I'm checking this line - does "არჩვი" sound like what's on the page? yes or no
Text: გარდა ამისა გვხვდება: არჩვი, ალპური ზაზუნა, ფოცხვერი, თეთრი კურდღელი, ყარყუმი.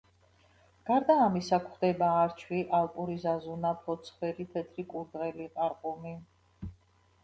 yes